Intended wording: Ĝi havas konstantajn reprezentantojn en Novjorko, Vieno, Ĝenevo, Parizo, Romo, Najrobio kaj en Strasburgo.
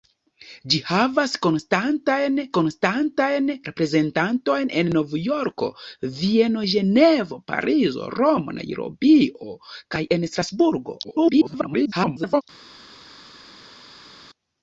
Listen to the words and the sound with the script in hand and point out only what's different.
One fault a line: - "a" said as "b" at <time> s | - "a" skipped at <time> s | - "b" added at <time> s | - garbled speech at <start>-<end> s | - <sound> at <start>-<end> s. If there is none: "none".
- "konstantajn" added at 2.6 s
- garbled speech at 11.0-12.4 s